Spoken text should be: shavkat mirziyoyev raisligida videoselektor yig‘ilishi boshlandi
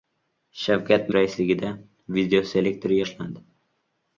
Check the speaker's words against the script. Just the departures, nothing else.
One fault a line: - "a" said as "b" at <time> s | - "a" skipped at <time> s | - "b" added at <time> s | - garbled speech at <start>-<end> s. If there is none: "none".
- "mirziyoyev" skipped at 1.1 s
- "yig‘ilishi" skipped at 3.0 s